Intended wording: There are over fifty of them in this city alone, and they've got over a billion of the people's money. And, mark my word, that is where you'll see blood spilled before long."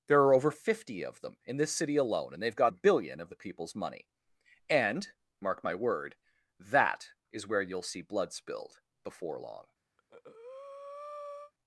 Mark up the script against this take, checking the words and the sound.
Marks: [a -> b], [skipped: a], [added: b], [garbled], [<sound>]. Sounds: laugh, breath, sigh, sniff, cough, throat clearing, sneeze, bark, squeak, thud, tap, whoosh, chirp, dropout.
There are over fifty of them in this city alone, and they've got [skipped: over] a billion of the people's money. And, mark my word, that is where you'll see blood spilled before long." [breath]